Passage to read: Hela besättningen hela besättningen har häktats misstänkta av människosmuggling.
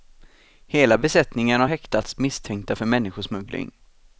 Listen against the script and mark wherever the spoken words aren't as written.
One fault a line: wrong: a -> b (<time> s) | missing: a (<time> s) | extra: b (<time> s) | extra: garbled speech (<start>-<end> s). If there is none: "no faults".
missing: hela besättningen (1.6 s)
wrong: av -> för (2.7 s)